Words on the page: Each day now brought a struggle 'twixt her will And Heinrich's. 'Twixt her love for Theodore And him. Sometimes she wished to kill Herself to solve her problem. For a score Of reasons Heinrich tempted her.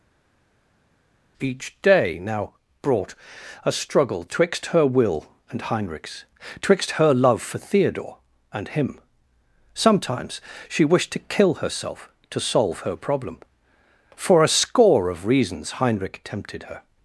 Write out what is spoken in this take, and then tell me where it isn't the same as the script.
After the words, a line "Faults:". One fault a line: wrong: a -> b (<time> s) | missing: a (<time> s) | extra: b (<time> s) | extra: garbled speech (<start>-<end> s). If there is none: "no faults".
Each day now brought a struggle 'twixt her will And Heinrich's. 'Twixt her love for Theodore And him. Sometimes she wished to kill Herself to solve her problem. For a score Of reasons Heinrich tempted her.
Faults:
no faults